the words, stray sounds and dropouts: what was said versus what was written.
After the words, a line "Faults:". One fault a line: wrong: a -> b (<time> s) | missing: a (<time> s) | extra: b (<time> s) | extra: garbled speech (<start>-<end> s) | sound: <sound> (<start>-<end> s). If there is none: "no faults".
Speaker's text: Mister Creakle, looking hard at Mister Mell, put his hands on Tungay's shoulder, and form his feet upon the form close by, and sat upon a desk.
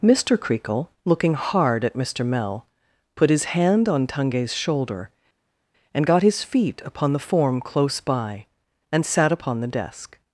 Mister Creakle, looking hard at Mister Mell, put his hand on Tungay's shoulder, and got his feet upon the form close by, and sat upon the desk.
Faults:
wrong: hands -> hand (3.5 s)
wrong: form -> got (6.0 s)
wrong: a -> the (9.6 s)